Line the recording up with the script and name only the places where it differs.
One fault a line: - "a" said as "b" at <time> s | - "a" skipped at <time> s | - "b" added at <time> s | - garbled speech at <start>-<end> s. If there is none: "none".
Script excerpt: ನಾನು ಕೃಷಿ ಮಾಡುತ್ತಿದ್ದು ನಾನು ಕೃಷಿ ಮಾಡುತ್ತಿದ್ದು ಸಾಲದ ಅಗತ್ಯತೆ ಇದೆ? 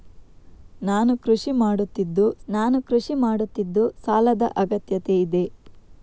none